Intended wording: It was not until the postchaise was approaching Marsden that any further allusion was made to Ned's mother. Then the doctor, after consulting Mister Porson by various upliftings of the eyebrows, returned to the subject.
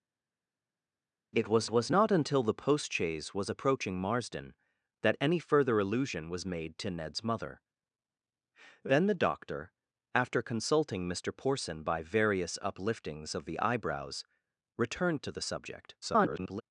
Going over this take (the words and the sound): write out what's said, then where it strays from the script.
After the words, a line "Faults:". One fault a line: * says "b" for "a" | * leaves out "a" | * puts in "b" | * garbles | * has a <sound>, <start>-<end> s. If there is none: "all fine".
It was was not until the postchaise was approaching Marsden that any further allusion was made to Ned's mother. Then the doctor, after consulting Mister Porson by various upliftings of the eyebrows, returned to the subject. [garbled]
Faults:
* puts in "was"
* garbles